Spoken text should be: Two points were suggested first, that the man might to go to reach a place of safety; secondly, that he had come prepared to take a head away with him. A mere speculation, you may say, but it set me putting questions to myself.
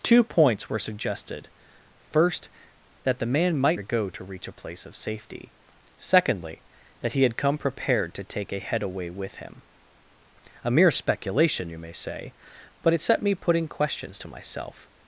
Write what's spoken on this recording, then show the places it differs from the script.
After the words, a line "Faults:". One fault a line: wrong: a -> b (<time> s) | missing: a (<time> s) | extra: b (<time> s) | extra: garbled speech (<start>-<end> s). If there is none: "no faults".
Two points were suggested first, that the man might to go to reach a place of safety; secondly, that he had come prepared to take a head away with him. A mere speculation, you may say, but it set me putting questions to myself.
Faults:
no faults